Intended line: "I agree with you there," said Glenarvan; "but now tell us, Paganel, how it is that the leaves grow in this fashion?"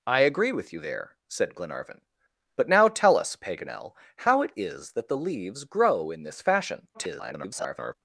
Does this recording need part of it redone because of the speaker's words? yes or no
yes